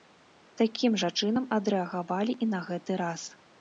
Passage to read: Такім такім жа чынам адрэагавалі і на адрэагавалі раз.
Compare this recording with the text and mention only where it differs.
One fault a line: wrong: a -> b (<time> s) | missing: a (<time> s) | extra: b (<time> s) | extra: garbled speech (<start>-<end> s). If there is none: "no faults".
missing: такім (0.9 s)
wrong: адрэагавалі -> гэты (2.7 s)